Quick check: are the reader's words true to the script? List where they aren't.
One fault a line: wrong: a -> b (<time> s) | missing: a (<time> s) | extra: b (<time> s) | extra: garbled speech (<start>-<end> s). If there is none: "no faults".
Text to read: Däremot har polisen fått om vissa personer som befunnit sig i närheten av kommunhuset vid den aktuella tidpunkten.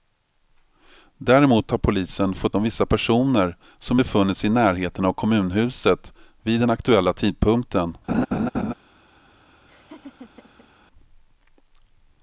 no faults